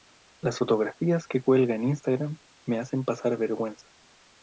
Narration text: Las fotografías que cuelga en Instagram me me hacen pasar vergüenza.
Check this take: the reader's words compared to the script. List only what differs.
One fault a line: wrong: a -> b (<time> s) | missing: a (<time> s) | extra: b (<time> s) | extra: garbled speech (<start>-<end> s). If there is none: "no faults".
missing: me (2.8 s)